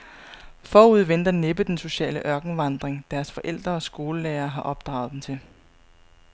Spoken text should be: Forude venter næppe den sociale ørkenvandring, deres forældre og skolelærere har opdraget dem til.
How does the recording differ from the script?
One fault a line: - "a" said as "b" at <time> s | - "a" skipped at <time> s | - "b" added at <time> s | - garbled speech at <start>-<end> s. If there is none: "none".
none